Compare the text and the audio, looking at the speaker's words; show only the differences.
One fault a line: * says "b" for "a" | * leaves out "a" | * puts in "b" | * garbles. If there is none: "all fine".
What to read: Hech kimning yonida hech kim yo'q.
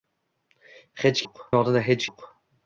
* says "yo'q" for "kimning"
* leaves out "kim"